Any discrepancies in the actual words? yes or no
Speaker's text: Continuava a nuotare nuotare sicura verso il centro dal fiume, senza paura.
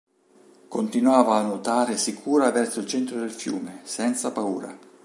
yes